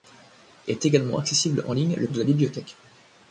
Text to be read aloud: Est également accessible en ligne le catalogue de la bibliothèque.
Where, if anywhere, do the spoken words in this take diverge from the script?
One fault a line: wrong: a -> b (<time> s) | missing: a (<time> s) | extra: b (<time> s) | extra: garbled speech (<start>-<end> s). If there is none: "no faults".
missing: catalogue (2.1 s)